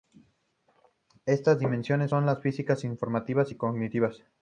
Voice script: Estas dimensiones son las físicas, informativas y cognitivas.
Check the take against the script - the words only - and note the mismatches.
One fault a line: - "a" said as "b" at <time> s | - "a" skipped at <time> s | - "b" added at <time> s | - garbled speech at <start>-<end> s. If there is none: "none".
none